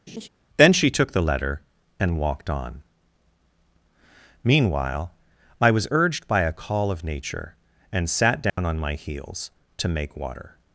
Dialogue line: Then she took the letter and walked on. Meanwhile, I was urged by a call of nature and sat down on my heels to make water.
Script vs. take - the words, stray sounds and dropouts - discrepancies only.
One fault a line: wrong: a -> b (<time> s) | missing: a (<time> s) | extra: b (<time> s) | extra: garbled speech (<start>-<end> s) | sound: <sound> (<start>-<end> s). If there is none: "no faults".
sound: laugh (0.1-0.3 s)
sound: dropout (8.5-8.6 s)